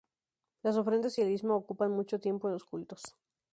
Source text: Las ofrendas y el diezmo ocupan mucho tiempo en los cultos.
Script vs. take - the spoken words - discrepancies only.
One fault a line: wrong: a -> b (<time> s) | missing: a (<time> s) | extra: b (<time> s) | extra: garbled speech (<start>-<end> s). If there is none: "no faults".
no faults